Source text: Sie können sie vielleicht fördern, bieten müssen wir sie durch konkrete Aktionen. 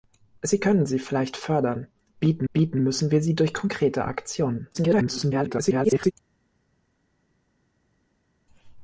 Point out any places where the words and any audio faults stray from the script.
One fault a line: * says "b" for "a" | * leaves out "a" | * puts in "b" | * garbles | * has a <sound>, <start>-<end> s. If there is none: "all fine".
* puts in "bieten"
* garbles